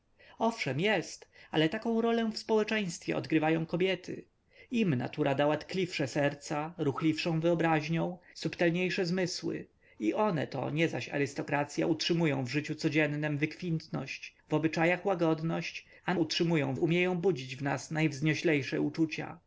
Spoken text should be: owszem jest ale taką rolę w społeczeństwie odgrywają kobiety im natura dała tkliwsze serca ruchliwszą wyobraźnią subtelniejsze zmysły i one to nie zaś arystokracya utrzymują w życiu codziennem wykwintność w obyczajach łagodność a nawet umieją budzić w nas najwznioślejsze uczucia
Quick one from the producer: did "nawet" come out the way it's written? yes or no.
no